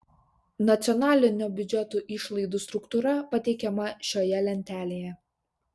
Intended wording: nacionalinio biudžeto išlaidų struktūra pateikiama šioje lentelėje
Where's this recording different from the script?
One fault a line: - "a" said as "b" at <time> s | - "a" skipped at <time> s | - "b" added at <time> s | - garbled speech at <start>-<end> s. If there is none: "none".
none